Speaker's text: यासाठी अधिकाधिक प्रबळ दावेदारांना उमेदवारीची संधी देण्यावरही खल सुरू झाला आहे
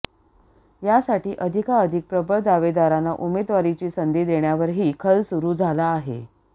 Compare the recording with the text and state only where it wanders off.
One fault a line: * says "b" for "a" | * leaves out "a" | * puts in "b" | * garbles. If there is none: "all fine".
all fine